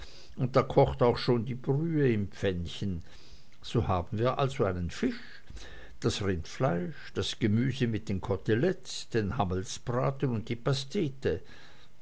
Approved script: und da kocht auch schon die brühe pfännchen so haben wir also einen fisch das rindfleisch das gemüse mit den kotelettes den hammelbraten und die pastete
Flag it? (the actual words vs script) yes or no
yes